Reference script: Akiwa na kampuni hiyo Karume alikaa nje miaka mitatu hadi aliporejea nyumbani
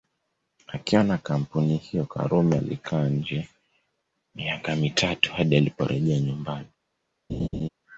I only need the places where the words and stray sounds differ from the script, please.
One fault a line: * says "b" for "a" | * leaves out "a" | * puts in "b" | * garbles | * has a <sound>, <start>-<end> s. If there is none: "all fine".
* has a laugh, 7.3-7.7 s